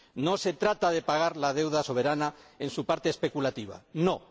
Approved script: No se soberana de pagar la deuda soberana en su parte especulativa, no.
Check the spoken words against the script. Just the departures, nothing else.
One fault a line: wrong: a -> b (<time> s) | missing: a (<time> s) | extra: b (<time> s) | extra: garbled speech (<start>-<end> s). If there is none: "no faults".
wrong: soberana -> trata (0.5 s)